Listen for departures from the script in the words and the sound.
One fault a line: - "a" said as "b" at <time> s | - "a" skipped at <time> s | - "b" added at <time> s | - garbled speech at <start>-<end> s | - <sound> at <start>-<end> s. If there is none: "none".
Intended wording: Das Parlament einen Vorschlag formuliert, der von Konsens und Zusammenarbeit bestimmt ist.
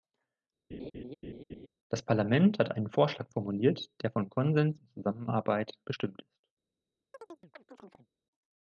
- laugh at 0.7-1.7 s
- "hat" added at 2.6 s
- chirp at 7.1-8.1 s